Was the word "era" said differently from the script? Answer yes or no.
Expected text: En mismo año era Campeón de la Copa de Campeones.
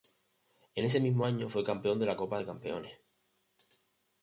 yes